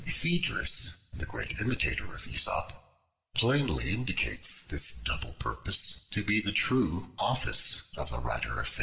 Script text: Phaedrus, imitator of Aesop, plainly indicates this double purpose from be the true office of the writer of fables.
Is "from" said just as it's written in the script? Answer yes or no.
no